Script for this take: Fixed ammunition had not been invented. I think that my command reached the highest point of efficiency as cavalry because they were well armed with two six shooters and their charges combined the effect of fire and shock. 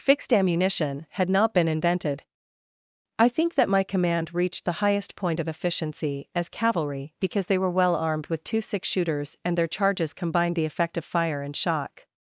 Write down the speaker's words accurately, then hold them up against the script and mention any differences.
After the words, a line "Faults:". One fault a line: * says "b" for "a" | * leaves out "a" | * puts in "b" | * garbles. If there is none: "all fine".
Fixed ammunition had not been invented. I think that my command reached the highest point of efficiency as cavalry because they were well armed with two six shooters and their charges combined the effect of fire and shock.
Faults:
all fine